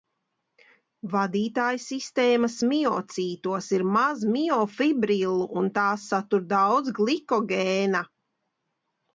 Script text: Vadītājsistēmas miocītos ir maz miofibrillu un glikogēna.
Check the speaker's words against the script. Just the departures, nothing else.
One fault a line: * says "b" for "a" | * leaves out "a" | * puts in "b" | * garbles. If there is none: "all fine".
* puts in "tās satur daudz"